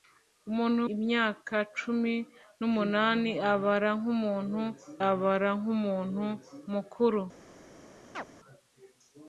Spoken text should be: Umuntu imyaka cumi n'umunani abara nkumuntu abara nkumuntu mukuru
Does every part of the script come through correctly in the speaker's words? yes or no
yes